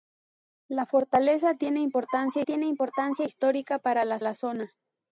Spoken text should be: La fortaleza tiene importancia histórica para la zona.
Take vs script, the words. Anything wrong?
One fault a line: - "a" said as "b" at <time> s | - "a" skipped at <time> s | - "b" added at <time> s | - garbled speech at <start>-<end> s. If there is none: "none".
- "tiene importancia" added at 2.4 s
- "la" added at 4.2 s